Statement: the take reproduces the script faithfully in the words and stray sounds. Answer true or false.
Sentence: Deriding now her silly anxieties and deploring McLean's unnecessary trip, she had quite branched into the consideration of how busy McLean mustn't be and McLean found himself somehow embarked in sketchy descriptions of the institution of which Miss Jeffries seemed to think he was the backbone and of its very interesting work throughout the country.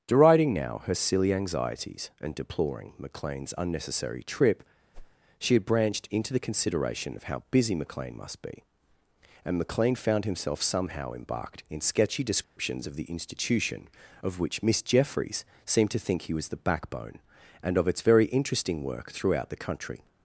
false